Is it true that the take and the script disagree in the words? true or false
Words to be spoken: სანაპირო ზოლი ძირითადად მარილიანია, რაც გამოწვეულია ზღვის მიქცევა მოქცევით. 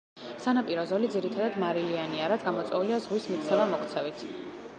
false